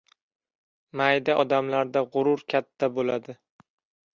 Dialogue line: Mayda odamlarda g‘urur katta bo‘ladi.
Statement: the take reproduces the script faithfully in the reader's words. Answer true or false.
true